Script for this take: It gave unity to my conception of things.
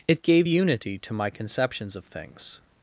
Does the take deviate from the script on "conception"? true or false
true